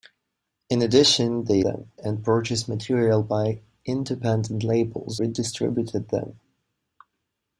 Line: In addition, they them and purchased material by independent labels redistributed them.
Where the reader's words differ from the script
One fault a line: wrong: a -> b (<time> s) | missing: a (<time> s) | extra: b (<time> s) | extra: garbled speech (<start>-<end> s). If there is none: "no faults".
no faults